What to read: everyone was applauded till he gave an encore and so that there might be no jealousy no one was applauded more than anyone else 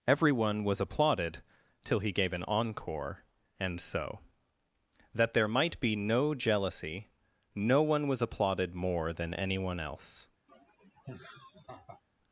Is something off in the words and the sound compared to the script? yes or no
yes